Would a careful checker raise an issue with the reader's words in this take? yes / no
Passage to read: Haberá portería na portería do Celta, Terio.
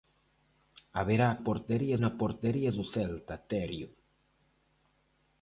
no